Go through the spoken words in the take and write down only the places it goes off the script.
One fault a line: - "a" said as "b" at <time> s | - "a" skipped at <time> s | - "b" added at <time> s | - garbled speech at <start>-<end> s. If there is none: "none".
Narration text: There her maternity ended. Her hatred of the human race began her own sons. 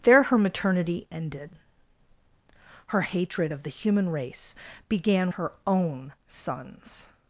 none